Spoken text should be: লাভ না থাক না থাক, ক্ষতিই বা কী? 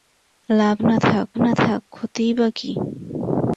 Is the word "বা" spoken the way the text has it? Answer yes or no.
yes